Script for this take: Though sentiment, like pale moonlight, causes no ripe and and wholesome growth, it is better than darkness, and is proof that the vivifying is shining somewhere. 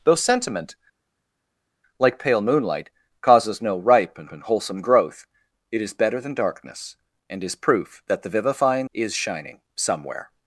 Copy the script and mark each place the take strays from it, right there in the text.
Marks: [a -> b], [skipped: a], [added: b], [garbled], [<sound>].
Though sentiment, like pale moonlight, causes no ripe and and wholesome growth, it is better than darkness, and is proof that the vivifying is shining somewhere.